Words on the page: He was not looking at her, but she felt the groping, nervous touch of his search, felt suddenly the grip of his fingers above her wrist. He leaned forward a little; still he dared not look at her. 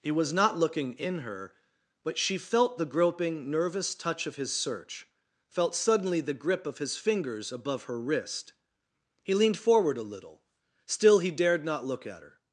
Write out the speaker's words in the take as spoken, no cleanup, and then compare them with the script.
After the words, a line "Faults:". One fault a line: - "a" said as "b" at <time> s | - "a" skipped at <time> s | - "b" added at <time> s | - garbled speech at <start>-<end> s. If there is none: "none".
He was not looking in her, but she felt the groping, nervous touch of his search, felt suddenly the grip of his fingers above her wrist. He leaned forward a little; still he dared not look at her.
Faults:
- "at" said as "in" at 0.9 s